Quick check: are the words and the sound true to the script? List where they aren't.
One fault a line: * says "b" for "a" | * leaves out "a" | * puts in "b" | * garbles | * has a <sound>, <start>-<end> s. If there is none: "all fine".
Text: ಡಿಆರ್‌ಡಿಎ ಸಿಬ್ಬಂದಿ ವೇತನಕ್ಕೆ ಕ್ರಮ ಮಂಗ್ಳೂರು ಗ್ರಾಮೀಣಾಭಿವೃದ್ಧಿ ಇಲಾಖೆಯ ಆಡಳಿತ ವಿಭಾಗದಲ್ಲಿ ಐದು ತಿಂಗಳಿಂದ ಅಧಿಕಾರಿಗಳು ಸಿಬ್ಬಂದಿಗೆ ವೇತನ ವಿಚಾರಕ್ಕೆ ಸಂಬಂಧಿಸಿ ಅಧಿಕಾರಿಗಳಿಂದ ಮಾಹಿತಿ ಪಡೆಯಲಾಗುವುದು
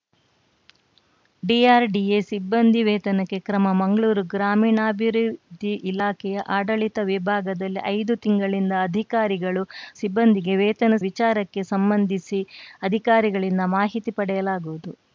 all fine